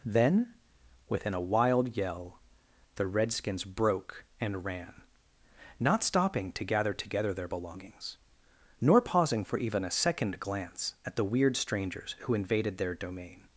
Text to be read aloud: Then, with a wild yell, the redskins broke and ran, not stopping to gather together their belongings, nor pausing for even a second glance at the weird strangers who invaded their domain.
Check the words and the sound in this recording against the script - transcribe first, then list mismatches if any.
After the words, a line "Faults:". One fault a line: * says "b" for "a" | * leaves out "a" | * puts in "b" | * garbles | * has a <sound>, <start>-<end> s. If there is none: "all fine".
Then, within a wild yell, the redskins broke and ran, not stopping to gather together their belongings, nor pausing for even a second glance at the weird strangers who invaded their domain.
Faults:
* says "within" for "with"